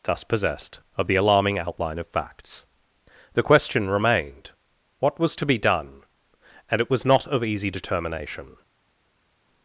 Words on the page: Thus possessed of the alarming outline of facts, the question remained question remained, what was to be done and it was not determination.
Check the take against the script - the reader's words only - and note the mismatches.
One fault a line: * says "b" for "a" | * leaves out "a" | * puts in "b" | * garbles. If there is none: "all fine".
* leaves out "question remained"
* puts in "of easy"